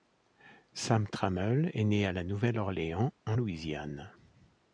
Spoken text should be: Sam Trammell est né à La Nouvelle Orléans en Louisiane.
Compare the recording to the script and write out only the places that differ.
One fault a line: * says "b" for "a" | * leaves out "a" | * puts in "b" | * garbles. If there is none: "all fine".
all fine